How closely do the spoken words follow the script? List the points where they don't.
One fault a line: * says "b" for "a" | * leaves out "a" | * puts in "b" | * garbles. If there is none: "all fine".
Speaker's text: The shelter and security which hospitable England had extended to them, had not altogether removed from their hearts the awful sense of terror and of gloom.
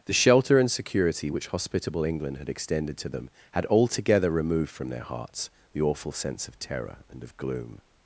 * leaves out "not"